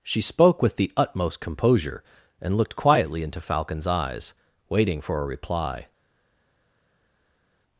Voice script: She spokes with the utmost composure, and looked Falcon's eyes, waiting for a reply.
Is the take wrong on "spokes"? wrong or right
wrong